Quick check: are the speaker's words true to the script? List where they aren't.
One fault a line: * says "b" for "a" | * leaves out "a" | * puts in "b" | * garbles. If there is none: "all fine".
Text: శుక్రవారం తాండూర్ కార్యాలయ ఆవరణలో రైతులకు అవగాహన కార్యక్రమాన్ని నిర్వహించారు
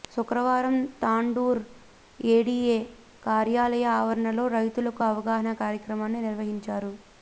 * puts in "ఏడీఏ"